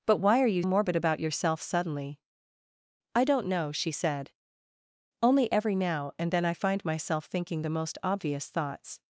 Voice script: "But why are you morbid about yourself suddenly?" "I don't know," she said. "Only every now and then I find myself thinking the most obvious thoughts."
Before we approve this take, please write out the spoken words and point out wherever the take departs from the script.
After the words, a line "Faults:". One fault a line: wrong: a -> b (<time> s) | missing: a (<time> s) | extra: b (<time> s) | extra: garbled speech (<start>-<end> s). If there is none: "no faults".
"But why are you morbid about yourself suddenly?" "I don't know," she said. "Only every now and then I find myself thinking the most obvious thoughts."
Faults:
no faults